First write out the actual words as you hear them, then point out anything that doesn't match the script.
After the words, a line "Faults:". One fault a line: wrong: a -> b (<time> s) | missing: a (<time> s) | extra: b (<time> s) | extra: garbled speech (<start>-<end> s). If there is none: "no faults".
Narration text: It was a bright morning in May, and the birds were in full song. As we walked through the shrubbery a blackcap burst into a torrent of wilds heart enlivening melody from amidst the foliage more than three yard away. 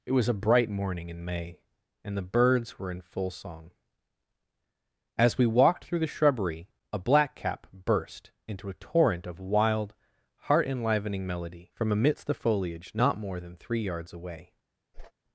It was a bright morning in May, and the birds were in full song. As we walked through the shrubbery a blackcap burst into a torrent of wild heart enlivening melody from amidst the foliage not more than three yards away.
Faults:
wrong: wilds -> wild (9.4 s)
extra: not (12.9 s)
wrong: yard -> yards (13.8 s)